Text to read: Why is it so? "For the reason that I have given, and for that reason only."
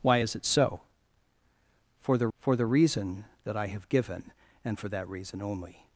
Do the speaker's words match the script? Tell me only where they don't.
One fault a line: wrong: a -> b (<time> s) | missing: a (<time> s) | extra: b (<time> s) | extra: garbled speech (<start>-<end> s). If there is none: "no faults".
extra: for the (2.4 s)